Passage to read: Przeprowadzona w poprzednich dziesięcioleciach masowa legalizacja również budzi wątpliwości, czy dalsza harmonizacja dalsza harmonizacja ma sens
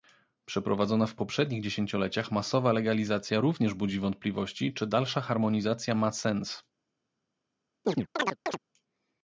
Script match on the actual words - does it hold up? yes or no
no